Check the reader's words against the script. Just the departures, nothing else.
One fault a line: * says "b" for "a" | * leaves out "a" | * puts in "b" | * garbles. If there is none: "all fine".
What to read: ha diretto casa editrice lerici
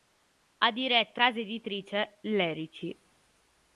all fine